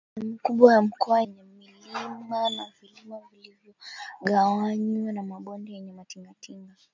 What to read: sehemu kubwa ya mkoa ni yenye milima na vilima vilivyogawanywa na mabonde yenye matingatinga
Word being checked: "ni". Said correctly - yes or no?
no